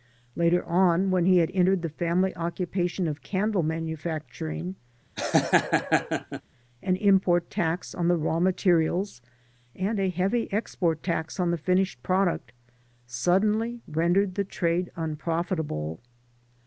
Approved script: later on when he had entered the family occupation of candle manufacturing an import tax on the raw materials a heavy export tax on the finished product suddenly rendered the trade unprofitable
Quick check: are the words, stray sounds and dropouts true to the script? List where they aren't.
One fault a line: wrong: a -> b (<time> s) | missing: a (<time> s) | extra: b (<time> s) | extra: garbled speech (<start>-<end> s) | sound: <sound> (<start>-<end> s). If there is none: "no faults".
sound: laugh (5.2-6.4 s)
extra: and (9.7 s)